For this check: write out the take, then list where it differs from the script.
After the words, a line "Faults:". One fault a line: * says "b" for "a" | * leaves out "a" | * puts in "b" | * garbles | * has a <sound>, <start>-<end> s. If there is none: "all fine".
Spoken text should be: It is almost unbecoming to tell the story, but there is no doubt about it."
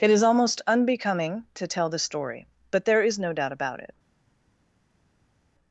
It is almost unbecoming to tell the story, but there is no doubt about it."
Faults:
all fine